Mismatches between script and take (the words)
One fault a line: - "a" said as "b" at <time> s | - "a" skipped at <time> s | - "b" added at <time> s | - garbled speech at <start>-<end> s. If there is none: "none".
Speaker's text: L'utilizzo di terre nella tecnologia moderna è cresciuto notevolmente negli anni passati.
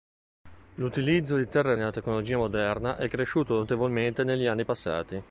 none